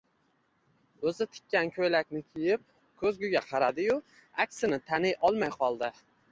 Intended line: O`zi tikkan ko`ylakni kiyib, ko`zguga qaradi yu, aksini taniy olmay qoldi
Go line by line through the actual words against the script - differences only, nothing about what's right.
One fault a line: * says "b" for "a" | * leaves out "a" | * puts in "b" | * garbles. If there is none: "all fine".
all fine